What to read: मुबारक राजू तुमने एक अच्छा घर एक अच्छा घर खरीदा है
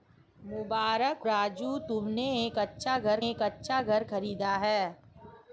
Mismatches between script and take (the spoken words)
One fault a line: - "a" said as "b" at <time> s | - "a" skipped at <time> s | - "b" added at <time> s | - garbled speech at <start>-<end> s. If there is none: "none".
none